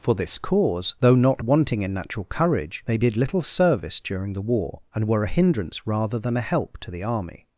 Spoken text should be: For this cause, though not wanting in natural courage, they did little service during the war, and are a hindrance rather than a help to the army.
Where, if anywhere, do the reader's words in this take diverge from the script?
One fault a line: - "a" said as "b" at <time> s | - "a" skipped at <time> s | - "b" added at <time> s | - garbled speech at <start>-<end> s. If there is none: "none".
- "are" said as "were" at 5.1 s